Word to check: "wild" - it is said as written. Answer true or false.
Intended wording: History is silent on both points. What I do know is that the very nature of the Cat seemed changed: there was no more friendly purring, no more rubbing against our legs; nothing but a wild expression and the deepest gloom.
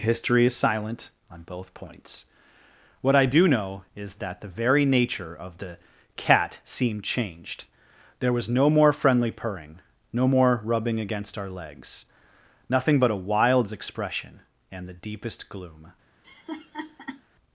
false